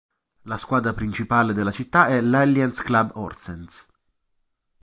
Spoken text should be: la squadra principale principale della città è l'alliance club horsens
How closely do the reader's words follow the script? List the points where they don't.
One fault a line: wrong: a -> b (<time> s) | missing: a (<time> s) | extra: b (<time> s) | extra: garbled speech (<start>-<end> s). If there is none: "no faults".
missing: principale (1.5 s)